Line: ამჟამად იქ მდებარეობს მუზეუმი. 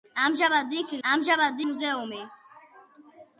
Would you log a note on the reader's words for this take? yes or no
yes